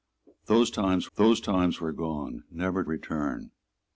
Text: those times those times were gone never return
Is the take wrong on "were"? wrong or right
right